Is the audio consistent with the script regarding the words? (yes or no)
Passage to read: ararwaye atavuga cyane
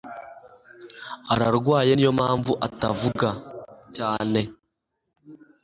no